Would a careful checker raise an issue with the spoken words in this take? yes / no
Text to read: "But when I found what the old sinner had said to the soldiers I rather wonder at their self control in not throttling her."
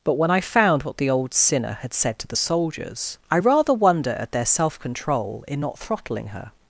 no